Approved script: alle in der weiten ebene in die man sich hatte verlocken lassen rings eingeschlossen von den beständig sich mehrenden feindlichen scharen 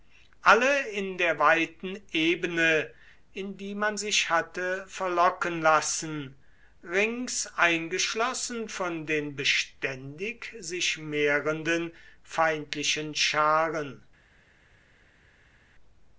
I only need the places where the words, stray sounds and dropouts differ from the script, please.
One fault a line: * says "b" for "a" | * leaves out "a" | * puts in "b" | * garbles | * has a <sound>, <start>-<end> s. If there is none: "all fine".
all fine